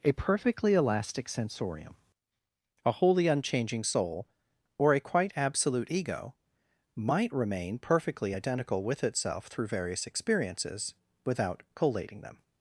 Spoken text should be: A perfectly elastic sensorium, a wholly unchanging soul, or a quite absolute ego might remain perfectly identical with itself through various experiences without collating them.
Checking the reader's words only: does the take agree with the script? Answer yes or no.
yes